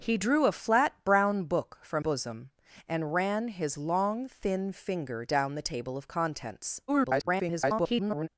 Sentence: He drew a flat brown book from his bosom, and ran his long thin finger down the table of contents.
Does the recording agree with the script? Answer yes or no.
no